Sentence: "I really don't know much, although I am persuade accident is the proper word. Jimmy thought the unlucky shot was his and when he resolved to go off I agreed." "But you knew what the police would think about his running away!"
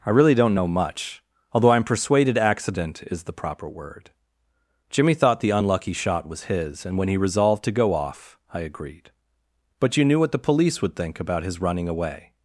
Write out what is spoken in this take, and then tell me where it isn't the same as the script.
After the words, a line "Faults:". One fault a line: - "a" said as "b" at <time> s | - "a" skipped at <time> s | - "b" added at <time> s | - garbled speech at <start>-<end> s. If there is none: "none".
"I really don't know much, although I am persuaded accident is the proper word. Jimmy thought the unlucky shot was his and when he resolved to go off I agreed." "But you knew what the police would think about his running away!"
Faults:
- "persuade" said as "persuaded" at 1.8 s